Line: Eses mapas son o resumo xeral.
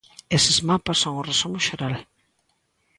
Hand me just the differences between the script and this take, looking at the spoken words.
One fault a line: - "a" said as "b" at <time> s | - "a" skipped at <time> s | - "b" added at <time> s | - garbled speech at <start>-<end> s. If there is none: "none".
none